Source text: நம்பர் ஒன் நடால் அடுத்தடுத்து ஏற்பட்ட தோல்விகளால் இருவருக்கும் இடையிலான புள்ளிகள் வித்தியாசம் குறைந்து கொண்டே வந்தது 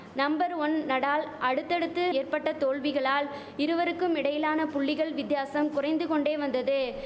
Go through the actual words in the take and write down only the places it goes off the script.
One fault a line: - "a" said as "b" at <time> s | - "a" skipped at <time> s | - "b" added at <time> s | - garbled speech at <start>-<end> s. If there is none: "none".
none